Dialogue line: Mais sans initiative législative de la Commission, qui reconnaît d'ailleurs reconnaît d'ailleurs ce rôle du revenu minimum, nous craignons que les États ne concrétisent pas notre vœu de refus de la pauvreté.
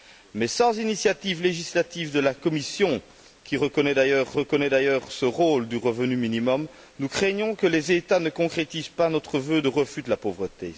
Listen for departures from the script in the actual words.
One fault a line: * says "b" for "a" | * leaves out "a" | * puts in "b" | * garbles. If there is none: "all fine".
all fine